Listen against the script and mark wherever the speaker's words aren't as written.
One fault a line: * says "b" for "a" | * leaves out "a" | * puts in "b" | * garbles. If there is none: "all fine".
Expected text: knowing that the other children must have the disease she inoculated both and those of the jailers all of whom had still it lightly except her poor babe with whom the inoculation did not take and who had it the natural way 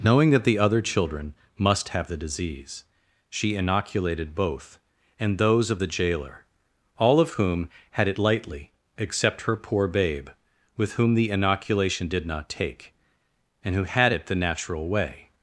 * says "jailer" for "jailers"
* leaves out "still"